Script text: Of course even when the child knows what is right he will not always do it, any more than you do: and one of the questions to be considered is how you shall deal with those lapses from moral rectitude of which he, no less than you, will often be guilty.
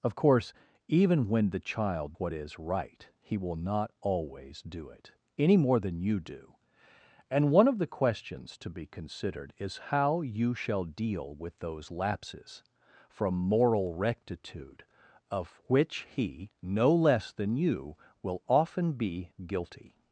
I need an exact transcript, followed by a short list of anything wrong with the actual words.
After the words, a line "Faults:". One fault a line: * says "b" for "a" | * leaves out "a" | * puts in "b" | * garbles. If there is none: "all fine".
Of course even when the child what is right he will not always do it, any more than you do: and one of the questions to be considered is how you shall deal with those lapses from moral rectitude of which he, no less than you, will often be guilty.
Faults:
* leaves out "knows"